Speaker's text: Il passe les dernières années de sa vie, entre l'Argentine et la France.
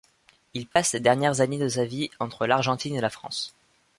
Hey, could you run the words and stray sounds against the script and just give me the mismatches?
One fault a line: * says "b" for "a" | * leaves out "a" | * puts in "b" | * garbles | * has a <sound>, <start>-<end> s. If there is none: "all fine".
* has a dropout, 0.7-0.8 s